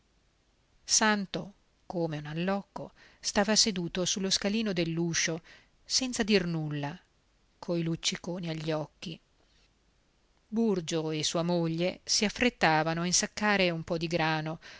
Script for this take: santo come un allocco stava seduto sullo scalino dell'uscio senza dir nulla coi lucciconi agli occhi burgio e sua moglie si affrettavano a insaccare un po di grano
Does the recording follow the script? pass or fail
pass